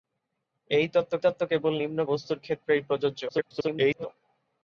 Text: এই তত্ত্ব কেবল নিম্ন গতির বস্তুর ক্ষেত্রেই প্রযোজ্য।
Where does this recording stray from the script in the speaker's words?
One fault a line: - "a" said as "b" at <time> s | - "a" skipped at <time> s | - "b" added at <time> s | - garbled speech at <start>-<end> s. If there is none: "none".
- "তত্ত্ব" added at 1.2 s
- "গতির" skipped at 2.0 s
- garbled speech at 3.3-4.1 s